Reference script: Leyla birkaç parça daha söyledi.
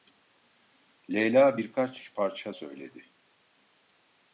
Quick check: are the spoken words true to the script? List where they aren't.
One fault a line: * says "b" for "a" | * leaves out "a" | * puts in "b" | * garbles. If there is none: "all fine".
* leaves out "daha"